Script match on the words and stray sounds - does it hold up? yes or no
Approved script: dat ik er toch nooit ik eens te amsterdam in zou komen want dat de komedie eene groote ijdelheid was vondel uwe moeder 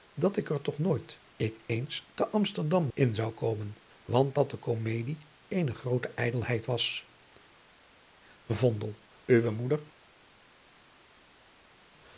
yes